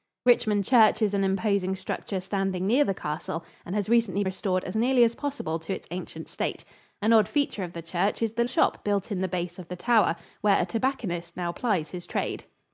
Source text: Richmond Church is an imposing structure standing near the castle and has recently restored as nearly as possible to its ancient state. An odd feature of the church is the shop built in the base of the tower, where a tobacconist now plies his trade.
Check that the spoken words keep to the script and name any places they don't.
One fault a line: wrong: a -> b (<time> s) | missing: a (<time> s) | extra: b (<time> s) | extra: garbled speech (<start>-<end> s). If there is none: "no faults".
no faults